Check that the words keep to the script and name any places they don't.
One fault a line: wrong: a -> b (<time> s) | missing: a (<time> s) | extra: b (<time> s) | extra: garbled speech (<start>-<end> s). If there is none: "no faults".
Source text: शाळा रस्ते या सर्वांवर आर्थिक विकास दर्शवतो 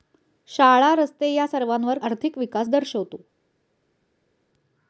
no faults